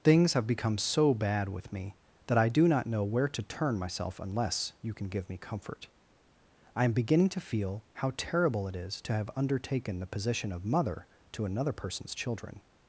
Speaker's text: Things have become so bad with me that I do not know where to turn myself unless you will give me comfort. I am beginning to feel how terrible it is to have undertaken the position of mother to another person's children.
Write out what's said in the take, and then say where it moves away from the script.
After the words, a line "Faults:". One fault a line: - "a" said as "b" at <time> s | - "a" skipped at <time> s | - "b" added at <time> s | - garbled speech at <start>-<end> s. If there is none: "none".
Things have become so bad with me that I do not know where to turn myself unless you can give me comfort. I am beginning to feel how terrible it is to have undertaken the position of mother to another person's children.
Faults:
- "will" said as "can" at 5.0 s